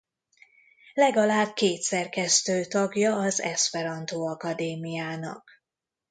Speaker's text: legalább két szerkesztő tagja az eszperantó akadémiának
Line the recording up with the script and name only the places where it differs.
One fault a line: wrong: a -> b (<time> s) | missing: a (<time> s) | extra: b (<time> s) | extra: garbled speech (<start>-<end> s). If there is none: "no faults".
no faults